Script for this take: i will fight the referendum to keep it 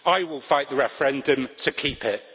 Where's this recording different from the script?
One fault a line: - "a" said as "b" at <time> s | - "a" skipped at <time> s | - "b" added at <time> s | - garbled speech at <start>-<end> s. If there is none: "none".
none